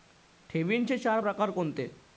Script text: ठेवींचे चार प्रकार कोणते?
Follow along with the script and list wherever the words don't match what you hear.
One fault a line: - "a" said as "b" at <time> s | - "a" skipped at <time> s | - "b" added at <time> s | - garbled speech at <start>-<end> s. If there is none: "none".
none